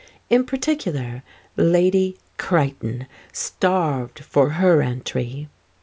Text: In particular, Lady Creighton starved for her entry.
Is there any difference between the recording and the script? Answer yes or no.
no